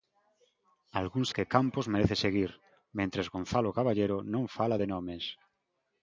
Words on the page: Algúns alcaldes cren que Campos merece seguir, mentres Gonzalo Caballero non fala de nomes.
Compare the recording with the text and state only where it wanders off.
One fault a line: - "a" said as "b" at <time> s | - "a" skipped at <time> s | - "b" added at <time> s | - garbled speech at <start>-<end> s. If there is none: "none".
- "alcaldes cren" skipped at 1.3 s